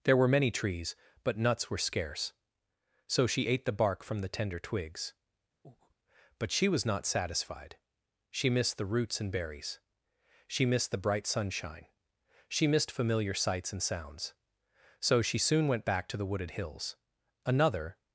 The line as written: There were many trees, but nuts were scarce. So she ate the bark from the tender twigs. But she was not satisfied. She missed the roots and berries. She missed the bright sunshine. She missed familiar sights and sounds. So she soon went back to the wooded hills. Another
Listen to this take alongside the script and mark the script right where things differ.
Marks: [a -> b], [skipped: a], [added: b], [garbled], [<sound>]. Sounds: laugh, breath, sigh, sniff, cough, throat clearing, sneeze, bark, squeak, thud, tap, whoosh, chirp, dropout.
There were many trees, but nuts were scarce. So she ate the bark from the tender twigs. [breath] But she was not satisfied. She missed the roots and berries. She missed the bright sunshine. She missed familiar sights and sounds. So she soon went back to the wooded hills. Another